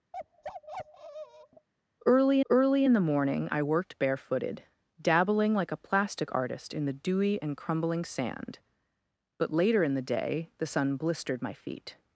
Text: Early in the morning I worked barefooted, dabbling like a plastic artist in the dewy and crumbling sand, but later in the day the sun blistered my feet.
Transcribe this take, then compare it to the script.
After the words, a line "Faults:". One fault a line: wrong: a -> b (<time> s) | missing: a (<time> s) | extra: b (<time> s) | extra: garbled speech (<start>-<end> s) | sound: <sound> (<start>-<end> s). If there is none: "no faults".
Early early in the morning I worked barefooted, dabbling like a plastic artist in the dewy and crumbling sand, but later in the day the sun blistered my feet.
Faults:
sound: bark (0.1-1.7 s)
extra: early (2.5 s)